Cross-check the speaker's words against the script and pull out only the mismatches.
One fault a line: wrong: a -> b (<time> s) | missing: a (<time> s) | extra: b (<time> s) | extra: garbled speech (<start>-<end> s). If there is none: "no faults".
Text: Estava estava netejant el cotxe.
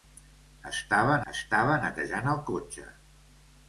no faults